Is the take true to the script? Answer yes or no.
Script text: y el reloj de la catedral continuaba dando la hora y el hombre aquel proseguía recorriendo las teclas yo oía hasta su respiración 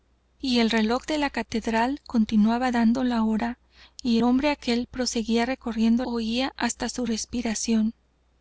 no